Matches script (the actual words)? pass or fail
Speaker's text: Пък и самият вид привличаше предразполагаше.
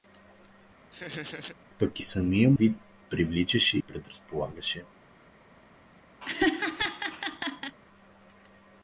pass